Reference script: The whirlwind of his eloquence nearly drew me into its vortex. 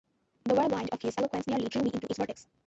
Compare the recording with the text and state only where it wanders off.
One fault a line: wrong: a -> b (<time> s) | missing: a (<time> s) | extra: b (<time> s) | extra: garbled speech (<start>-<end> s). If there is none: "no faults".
no faults